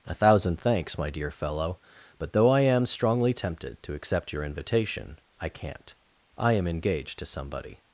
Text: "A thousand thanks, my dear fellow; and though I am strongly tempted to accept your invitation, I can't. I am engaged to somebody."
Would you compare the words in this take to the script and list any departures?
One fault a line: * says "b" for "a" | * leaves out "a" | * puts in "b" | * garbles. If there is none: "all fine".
* says "but" for "and"